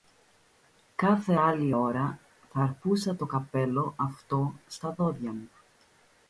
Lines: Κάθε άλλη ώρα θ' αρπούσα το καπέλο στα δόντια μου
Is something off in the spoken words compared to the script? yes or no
yes